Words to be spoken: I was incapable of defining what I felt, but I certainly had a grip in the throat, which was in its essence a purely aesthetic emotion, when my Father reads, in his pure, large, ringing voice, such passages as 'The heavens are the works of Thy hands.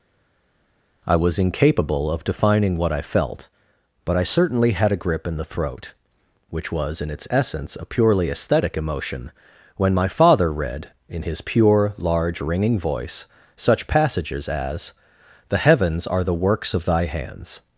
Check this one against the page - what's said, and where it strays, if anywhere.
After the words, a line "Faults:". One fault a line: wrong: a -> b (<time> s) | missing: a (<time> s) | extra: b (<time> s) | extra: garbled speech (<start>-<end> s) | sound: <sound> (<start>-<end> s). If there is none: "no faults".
I was incapable of defining what I felt, but I certainly had a grip in the throat, which was in its essence a purely aesthetic emotion, when my Father read, in his pure, large, ringing voice, such passages as 'The heavens are the works of Thy hands.
Faults:
wrong: reads -> read (10.5 s)